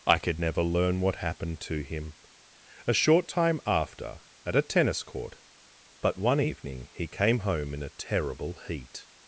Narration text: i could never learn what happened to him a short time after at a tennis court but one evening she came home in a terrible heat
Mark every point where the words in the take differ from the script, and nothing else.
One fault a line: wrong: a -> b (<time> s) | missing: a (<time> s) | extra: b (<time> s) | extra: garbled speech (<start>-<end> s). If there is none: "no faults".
wrong: she -> he (6.9 s)